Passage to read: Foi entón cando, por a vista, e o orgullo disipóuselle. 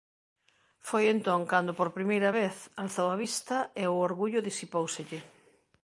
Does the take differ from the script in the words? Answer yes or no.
yes